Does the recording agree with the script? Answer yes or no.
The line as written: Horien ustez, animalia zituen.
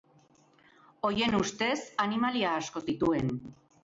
no